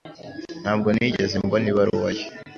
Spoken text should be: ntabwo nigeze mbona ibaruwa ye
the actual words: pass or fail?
pass